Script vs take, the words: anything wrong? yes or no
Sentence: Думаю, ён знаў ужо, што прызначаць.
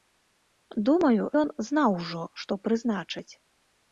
no